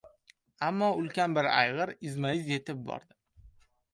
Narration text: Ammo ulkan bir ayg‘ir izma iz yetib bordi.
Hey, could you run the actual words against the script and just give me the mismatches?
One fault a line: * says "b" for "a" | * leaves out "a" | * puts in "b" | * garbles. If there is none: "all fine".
all fine